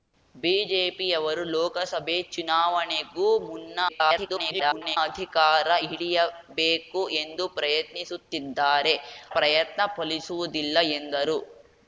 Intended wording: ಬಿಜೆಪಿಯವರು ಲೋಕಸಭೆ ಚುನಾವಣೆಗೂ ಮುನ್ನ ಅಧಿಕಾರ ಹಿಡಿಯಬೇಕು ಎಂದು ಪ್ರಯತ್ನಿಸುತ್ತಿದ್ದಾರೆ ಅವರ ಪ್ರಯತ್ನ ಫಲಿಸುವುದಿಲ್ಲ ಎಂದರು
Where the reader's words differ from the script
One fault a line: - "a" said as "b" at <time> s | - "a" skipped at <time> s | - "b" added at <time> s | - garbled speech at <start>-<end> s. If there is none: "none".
- garbled speech at 3.9-5.0 s
- "ಅವರ" skipped at 8.9 s